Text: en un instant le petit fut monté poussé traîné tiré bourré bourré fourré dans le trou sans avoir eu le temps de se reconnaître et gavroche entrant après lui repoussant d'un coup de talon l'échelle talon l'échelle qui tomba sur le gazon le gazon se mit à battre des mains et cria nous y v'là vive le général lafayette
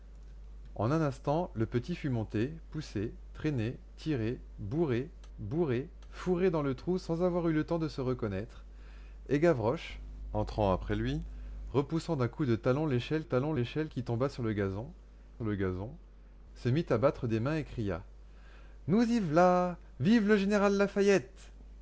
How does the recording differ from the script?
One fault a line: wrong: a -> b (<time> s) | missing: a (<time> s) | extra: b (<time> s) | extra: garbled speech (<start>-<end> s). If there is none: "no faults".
no faults